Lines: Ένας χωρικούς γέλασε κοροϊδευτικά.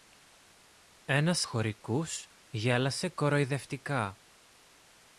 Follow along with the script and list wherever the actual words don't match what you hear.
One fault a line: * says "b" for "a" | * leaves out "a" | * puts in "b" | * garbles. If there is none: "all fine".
all fine